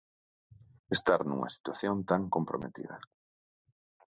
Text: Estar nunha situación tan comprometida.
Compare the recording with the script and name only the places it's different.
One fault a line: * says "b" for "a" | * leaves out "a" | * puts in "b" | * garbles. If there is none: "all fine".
all fine